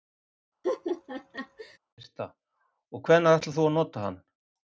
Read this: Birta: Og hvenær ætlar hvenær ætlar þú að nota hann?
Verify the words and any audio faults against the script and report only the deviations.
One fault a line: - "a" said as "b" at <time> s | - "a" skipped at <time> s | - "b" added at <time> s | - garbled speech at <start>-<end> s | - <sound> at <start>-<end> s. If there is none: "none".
- laugh at 0.6-1.8 s
- "hvenær ætlar" skipped at 3.6 s